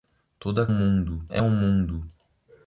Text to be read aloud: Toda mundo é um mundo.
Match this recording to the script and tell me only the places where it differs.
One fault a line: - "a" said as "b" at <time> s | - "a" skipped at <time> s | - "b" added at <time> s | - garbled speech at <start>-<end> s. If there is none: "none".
none